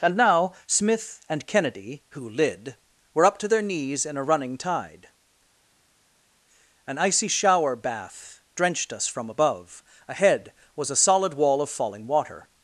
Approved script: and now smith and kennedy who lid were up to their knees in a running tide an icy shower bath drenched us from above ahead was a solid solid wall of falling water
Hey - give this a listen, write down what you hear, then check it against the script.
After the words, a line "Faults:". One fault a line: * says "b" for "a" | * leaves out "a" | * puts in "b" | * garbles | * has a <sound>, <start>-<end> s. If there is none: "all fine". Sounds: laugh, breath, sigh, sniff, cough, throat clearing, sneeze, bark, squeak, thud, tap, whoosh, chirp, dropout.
and now smith and kennedy who lid were up to their knees in a running tide an icy shower bath drenched us from above ahead was a solid wall of falling water
Faults:
* leaves out "solid"